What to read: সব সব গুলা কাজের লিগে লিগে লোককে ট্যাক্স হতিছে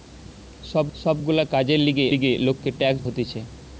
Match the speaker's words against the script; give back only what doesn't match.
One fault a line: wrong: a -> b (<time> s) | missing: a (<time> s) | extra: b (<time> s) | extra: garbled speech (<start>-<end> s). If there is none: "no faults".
no faults